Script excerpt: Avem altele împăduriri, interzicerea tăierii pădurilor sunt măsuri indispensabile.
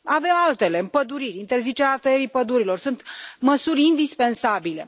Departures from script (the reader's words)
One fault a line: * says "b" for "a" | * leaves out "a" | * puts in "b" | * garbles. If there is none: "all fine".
all fine